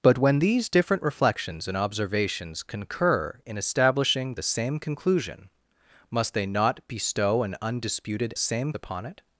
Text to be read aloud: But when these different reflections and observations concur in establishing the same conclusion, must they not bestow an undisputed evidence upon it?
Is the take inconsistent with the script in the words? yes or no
yes